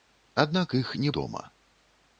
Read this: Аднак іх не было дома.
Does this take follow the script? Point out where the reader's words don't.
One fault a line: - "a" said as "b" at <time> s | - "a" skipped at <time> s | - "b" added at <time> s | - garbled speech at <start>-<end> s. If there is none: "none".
- "было" skipped at 1.1 s